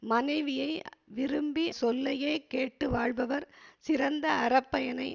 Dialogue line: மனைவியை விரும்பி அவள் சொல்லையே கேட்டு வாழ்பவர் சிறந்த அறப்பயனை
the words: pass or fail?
fail